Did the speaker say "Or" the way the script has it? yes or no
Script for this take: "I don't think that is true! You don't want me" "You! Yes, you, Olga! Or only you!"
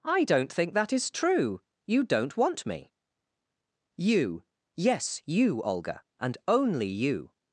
no